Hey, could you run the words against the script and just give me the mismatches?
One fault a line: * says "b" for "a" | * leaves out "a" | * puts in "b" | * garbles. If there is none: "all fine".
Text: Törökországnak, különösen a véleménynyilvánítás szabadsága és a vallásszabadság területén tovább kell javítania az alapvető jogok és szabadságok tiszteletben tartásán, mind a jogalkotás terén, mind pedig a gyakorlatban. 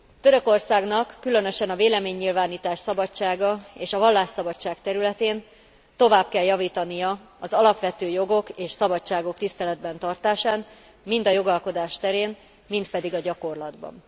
all fine